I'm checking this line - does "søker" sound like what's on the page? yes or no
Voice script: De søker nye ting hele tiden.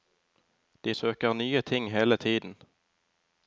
yes